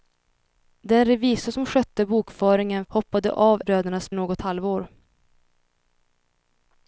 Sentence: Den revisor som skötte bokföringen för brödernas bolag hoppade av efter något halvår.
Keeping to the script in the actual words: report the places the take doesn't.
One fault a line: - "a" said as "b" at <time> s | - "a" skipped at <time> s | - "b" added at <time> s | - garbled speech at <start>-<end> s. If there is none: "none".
- "för brödernas bolag" skipped at 2.9 s
- "efter" said as "brödernas" at 3.6 s